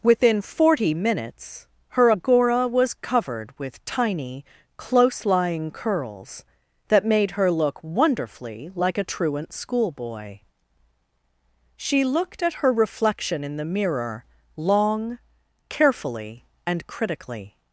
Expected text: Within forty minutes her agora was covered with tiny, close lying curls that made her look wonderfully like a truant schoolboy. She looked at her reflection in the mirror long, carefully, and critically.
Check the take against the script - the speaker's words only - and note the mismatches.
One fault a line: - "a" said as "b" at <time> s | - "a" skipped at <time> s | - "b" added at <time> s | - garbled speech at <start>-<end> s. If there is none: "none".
none